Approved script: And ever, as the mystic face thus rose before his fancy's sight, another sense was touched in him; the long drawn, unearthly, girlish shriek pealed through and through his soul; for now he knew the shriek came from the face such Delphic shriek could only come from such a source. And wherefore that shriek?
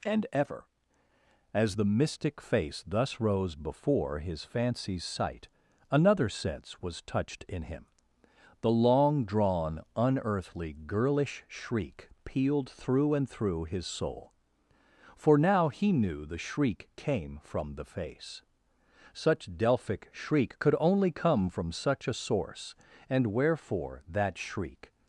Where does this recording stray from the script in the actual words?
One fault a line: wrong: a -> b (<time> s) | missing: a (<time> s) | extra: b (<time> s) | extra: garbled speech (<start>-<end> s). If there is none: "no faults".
no faults